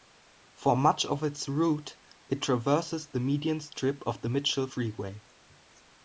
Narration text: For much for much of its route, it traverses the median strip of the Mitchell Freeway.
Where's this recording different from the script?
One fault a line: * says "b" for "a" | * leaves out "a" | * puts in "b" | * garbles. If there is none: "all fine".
* leaves out "for much"